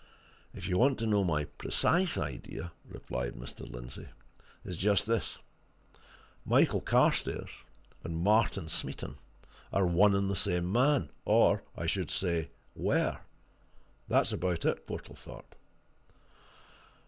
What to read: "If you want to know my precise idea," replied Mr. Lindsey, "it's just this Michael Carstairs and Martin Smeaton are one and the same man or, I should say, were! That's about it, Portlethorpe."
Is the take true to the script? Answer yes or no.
yes